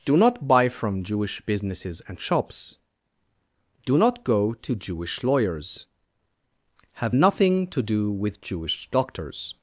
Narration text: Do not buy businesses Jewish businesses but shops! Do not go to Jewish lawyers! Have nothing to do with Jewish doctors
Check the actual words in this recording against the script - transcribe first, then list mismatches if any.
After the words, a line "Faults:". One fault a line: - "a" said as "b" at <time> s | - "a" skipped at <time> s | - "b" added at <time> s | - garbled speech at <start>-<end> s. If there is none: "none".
Do not buy from Jewish businesses and shops! Do not go to Jewish lawyers! Have nothing to do with Jewish doctors
Faults:
- "businesses" said as "from" at 0.7 s
- "but" said as "and" at 2.1 s